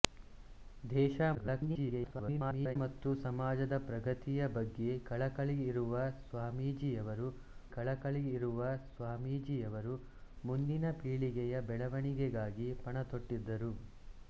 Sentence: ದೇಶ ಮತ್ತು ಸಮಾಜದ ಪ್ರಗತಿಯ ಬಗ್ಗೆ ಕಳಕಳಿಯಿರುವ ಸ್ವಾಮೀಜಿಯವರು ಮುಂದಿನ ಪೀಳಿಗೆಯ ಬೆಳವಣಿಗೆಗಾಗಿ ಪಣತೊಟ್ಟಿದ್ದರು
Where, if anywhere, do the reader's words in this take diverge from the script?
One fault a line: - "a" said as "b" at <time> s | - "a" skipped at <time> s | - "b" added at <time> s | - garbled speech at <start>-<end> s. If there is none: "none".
- garbled speech at 1.3-2.8 s
- "ಕಳಕಳಿಯಿರುವ ಸ್ವಾಮೀಜಿಯವರು" added at 7.7 s